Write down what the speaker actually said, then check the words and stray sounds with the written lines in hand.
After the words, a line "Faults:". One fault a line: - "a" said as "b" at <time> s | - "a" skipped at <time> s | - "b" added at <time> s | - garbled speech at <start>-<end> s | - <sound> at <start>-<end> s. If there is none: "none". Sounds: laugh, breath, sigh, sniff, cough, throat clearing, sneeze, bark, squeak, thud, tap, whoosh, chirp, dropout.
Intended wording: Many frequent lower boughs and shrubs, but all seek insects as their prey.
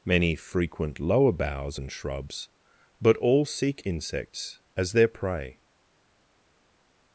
Many frequent lower boughs and shrubs, but all seek insects as their prey.
Faults:
none